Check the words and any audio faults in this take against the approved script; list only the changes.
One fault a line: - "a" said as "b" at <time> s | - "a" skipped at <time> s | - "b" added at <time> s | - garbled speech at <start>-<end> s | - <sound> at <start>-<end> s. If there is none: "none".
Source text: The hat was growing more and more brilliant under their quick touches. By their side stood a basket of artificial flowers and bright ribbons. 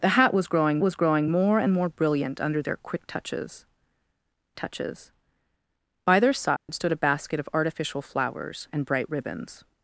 - "was growing" added at 0.8 s
- "touches" added at 4.5 s
- dropout at 6.6-6.7 s